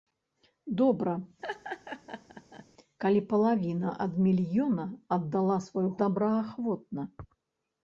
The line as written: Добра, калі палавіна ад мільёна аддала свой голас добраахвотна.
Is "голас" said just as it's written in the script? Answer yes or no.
no